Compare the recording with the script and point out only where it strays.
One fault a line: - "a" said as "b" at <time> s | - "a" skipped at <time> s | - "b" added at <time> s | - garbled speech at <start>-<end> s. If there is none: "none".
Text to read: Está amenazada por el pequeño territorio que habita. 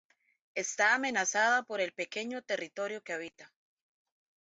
none